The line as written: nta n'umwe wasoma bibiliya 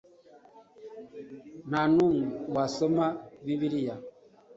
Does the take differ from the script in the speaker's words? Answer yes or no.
no